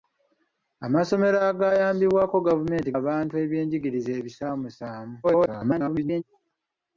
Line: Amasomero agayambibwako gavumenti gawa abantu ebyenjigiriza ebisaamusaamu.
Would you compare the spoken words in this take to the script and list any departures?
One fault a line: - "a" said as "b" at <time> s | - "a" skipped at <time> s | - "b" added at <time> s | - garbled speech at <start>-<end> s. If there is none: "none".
- "gawa" skipped at 2.9 s
- garbled speech at 5.2-6.2 s